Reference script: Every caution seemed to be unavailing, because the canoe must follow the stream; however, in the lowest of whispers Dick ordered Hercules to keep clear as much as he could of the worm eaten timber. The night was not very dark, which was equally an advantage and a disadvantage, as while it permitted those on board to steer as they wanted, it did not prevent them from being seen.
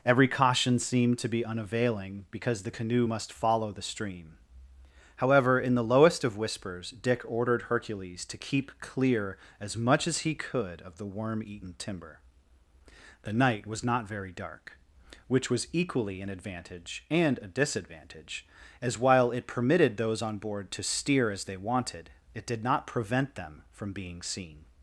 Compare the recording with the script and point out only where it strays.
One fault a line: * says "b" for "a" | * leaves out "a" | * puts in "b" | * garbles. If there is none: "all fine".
all fine